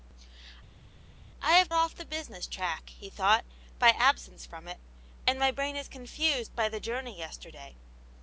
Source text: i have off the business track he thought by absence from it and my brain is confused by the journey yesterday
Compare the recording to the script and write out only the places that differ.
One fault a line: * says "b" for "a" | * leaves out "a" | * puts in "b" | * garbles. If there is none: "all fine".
all fine